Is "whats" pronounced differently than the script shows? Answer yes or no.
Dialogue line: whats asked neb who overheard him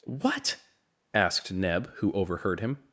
yes